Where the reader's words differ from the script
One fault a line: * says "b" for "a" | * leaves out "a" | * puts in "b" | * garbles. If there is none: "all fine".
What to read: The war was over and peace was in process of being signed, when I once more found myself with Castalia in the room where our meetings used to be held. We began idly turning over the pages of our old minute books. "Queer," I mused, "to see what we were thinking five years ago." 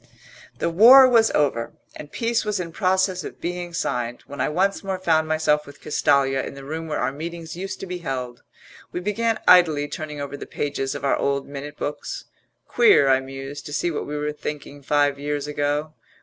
all fine